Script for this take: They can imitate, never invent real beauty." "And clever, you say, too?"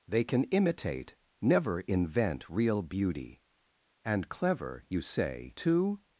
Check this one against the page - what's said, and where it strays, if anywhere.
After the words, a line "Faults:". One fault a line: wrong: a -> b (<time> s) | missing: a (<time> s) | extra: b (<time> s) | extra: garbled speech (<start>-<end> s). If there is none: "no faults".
They can imitate, never invent real beauty." "And clever, you say, too?"
Faults:
no faults